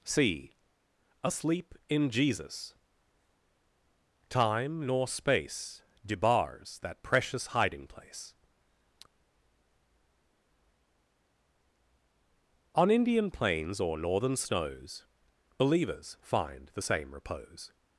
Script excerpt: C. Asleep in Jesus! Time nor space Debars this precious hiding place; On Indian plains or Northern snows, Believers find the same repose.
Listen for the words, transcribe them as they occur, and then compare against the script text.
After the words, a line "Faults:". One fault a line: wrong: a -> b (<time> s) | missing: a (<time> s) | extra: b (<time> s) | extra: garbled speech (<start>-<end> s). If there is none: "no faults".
C. Asleep in Jesus! Time nor space Debars that precious hiding place; On Indian plains or Northern snows, Believers find the same repose.
Faults:
wrong: this -> that (6.8 s)